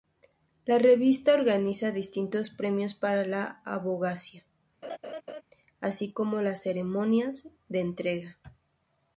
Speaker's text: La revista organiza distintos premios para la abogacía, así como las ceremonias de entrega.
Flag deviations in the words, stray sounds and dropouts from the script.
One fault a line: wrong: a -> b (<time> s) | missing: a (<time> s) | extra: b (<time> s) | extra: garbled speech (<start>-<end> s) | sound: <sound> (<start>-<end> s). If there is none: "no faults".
sound: laugh (4.8-5.4 s)